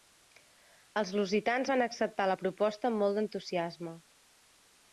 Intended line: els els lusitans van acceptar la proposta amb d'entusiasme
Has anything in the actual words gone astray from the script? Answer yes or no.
yes